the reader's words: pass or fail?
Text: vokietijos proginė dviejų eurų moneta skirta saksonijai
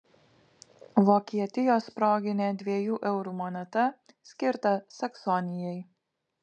pass